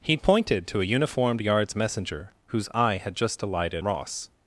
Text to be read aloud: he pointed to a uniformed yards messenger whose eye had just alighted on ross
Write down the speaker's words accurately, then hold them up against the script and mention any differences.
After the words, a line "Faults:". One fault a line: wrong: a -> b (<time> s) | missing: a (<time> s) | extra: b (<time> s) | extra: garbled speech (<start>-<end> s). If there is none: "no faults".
he pointed to a uniformed yards messenger whose eye had just alighted ross
Faults:
missing: on (3.8 s)